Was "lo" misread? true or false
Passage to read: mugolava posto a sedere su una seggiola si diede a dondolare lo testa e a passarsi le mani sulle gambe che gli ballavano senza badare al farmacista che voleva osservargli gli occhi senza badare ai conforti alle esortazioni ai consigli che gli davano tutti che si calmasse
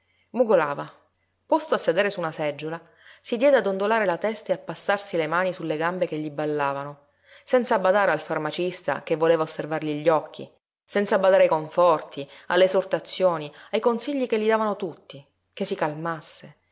true